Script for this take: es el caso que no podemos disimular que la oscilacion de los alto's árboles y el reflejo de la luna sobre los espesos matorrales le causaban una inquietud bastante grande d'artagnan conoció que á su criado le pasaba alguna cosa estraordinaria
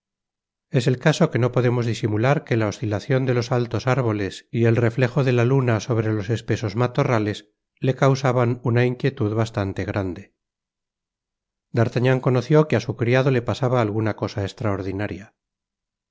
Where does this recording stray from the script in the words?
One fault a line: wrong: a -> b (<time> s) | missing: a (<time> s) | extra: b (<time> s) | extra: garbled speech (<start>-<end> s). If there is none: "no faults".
no faults